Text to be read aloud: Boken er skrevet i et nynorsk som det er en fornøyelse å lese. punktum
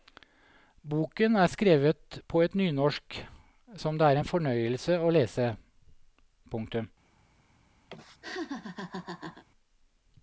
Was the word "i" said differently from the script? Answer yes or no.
yes